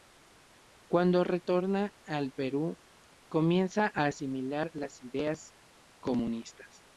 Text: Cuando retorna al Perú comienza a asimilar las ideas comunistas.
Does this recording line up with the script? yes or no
yes